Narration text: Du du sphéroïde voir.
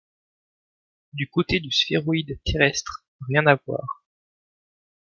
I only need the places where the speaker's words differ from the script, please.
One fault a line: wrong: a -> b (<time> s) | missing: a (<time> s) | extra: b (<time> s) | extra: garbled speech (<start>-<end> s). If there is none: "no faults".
extra: côté (1.3 s)
extra: terrestre rien à (2.4 s)